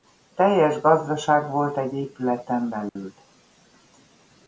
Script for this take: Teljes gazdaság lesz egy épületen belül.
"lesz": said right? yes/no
no